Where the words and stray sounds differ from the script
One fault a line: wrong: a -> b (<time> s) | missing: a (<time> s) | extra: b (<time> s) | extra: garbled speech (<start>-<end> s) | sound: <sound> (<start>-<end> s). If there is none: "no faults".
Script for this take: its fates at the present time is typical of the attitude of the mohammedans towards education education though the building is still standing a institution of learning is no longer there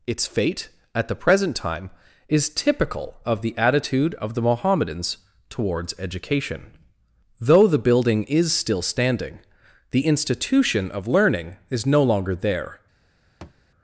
wrong: fates -> fate (0.3 s)
missing: education (6.8 s)
wrong: a -> the (9.9 s)
sound: thud (13.4-13.6 s)